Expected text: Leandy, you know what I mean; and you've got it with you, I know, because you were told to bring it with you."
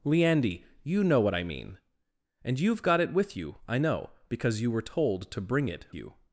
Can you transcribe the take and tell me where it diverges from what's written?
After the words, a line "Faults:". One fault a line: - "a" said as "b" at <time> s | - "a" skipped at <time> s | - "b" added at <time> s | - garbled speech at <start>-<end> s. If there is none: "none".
Leandy, you know what I mean; and you've got it with you, I know, because you were told to bring it you."
Faults:
- "with" skipped at 5.8 s